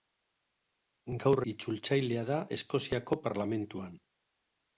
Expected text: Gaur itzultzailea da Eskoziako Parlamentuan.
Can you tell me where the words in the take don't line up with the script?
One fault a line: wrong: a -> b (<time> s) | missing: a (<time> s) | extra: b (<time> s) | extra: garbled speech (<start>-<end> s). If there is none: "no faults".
no faults